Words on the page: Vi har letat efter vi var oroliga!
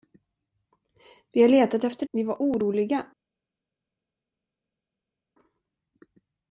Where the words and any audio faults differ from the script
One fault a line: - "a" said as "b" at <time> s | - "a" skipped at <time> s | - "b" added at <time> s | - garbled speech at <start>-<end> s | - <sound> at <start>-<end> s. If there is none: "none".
none